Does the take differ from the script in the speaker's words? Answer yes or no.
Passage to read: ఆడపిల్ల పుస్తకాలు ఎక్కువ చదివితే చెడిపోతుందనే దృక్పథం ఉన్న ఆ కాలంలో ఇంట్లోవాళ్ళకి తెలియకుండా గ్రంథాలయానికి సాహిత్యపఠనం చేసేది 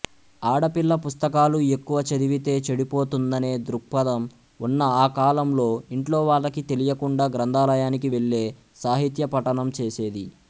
yes